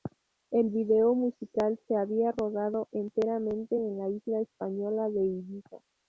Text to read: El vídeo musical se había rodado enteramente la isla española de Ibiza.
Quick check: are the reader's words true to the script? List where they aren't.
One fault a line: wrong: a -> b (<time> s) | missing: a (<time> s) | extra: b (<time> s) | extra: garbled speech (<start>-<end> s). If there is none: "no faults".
extra: en (3.7 s)